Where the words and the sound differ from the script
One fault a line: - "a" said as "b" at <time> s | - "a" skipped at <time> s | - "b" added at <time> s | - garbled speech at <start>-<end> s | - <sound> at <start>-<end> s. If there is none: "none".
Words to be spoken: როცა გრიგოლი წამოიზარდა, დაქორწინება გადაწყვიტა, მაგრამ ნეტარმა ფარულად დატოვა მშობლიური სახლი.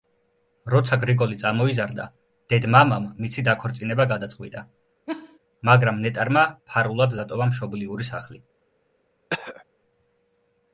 - "დედ მამამ მისი" added at 2.5 s
- laugh at 5.1-5.4 s
- throat clearing at 9.3-9.6 s